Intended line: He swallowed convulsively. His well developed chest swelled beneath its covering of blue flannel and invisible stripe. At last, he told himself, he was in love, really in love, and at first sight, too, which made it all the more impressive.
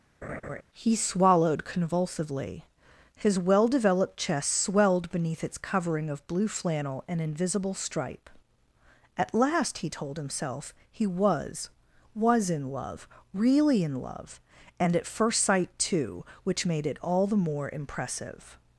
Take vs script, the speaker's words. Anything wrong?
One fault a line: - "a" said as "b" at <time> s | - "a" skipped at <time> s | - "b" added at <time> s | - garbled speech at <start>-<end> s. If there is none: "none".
- "was" added at 12.1 s